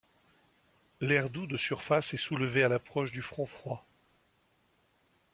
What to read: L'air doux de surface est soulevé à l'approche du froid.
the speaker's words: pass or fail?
fail